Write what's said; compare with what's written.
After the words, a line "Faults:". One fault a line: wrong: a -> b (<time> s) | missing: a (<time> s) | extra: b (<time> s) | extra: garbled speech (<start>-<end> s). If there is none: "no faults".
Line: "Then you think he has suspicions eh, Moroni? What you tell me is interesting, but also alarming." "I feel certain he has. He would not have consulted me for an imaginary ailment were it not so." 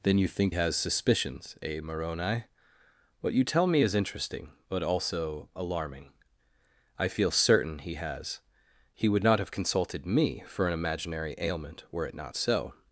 "Then you think has suspicions eh, Moroni? What you tell me is interesting, but also alarming." "I feel certain he has. He would not have consulted me for an imaginary ailment were it not so."
Faults:
missing: he (0.6 s)